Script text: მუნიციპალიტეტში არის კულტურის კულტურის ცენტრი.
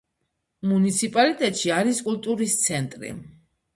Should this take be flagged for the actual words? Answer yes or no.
yes